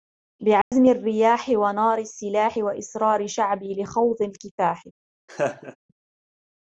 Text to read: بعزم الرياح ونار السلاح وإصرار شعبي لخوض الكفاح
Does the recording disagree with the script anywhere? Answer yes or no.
no